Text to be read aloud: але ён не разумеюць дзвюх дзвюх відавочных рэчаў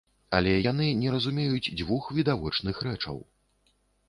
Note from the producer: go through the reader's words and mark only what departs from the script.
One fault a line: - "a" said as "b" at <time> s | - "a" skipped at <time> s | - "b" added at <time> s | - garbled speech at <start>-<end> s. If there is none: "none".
- "ён" said as "яны" at 0.7 s
- "дзвюх" skipped at 2.1 s